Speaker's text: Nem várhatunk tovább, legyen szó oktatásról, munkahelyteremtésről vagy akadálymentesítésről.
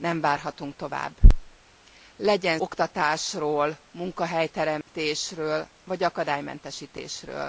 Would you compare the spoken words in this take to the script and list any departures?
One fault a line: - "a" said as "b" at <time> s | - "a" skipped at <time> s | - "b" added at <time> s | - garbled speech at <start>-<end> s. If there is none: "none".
- "szó" skipped at 2.6 s